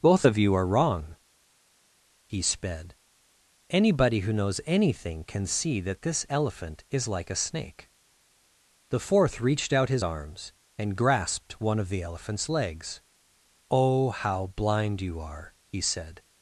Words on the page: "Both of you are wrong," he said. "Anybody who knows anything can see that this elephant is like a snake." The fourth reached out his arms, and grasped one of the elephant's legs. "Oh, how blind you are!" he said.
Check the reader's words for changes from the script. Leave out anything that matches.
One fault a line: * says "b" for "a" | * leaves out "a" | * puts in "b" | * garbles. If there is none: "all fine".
* says "sped" for "said"